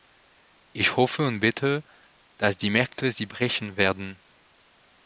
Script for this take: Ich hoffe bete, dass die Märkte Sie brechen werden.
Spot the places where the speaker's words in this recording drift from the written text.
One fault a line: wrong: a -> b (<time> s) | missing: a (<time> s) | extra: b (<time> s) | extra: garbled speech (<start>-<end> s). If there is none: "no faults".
extra: und (1.3 s)